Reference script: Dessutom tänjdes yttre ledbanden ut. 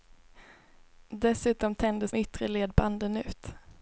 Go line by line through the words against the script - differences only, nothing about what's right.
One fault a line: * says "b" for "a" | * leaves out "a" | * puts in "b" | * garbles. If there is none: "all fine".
all fine